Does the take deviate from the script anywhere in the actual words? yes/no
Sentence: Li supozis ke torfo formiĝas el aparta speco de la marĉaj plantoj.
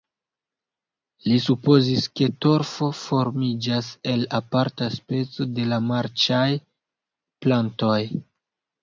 no